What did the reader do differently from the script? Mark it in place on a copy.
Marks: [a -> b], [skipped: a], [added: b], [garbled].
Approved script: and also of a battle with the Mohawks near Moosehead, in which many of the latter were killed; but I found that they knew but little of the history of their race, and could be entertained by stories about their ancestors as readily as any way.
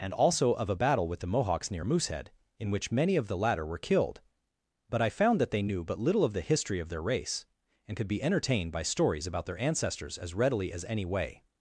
and also of a battle with the Mohawks near Moosehead, in which many of the latter were killed; but I found that they knew but little of the history of their race, and could be entertained by stories about their ancestors as readily as any way.